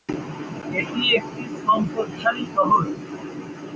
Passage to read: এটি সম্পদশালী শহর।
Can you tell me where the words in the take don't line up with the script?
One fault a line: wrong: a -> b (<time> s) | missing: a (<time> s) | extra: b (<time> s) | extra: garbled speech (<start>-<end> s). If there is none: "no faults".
extra: একটি (1.2 s)